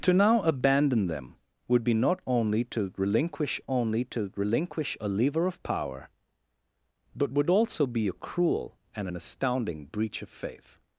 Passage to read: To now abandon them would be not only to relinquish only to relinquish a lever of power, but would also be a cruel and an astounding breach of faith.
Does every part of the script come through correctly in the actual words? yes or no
yes